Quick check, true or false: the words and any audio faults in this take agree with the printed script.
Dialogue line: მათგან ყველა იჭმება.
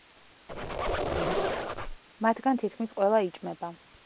false